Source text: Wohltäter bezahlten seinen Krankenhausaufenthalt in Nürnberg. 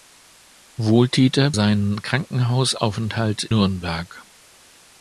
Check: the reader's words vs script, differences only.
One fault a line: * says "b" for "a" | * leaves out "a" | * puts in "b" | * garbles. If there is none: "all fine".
* leaves out "bezahlten"
* leaves out "in"